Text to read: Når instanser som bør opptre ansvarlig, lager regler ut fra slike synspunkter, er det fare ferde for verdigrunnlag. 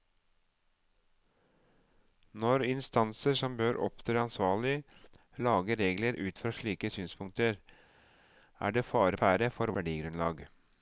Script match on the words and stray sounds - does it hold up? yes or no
yes